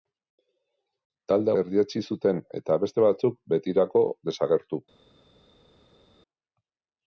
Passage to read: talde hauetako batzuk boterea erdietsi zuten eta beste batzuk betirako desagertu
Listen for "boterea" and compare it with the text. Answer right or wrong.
wrong